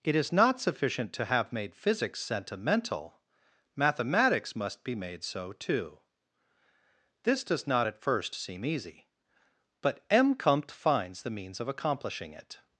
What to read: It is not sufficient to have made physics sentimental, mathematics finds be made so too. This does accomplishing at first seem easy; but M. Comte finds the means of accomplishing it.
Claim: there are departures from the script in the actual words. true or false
true